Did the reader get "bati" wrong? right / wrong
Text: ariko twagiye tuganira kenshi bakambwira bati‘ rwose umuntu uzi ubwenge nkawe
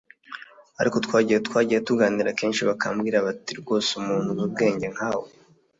right